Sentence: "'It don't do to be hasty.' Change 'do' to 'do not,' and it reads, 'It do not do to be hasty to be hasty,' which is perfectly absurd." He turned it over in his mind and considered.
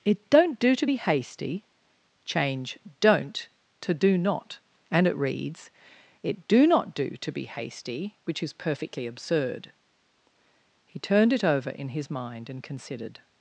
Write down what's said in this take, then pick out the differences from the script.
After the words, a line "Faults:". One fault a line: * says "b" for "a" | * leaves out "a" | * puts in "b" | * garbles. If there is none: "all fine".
"'It don't do to be hasty.' Change 'don't' to 'do not,' and it reads, 'It do not do to be hasty,' which is perfectly absurd." He turned it over in his mind and considered.
Faults:
* says "don't" for "do"
* leaves out "to be hasty"